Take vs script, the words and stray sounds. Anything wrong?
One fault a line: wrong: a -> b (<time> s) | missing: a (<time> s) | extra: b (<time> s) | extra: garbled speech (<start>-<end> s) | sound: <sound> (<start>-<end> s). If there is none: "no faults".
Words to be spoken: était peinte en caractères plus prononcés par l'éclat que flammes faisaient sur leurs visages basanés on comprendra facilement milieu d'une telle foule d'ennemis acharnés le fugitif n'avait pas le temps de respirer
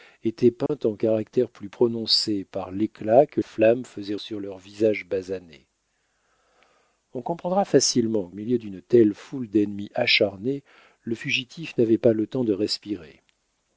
sound: dropout (0.7-0.7 s)